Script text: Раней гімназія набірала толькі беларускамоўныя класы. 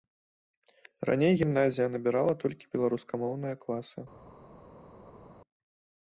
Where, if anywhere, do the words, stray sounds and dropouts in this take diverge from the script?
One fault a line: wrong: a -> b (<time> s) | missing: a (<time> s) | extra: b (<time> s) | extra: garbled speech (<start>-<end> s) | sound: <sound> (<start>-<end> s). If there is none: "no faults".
no faults